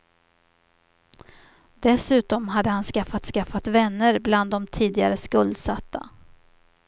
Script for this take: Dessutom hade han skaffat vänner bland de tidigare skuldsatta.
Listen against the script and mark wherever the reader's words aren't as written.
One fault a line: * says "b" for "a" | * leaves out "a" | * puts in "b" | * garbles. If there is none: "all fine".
* puts in "skaffat"